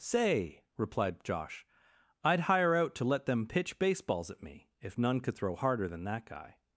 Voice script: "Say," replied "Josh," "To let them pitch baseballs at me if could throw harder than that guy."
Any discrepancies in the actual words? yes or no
yes